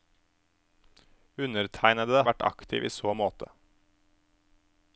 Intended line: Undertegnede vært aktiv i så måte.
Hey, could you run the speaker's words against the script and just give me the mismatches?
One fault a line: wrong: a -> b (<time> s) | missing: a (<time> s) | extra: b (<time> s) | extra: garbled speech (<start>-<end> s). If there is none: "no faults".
no faults